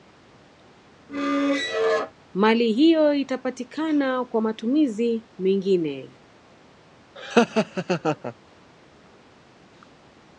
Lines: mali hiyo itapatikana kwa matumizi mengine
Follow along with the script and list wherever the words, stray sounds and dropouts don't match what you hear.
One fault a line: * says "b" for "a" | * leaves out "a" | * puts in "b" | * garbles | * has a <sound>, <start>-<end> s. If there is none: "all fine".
* has a squeak, 1.1-2.1 s
* has a laugh, 7.2-8.3 s